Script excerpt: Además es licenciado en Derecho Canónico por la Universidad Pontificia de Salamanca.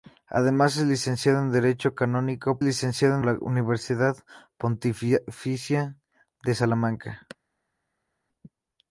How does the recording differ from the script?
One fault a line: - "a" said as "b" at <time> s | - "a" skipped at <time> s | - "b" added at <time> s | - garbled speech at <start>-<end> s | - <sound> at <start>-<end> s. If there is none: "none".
- "por" said as "licenciado" at 2.6 s